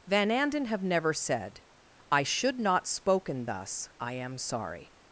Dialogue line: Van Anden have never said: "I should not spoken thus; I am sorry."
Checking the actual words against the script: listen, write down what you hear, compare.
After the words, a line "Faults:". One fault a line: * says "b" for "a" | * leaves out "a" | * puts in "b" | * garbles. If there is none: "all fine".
Van Anden have never said: "I should not spoken thus; I am sorry."
Faults:
all fine